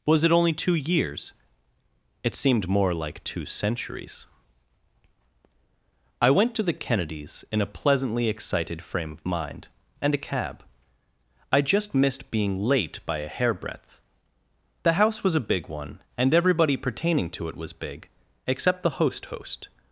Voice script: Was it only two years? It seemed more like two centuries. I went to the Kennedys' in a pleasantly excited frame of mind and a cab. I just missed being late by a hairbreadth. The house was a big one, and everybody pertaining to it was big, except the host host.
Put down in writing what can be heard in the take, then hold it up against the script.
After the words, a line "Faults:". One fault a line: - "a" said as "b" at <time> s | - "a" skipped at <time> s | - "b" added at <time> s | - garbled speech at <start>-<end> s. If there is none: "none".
Was it only two years? It seemed more like two centuries. I went to the Kennedys' in a pleasantly excited frame of mind and a cab. I just missed being late by a hairbreadth. The house was a big one, and everybody pertaining to it was big, except the host host.
Faults:
none